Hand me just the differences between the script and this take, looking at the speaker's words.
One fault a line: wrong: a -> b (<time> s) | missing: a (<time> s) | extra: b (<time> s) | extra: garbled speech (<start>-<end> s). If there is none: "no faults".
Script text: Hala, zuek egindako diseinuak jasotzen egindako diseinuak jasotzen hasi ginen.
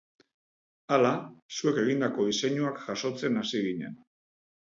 missing: egindako diseinuak jasotzen (3.4 s)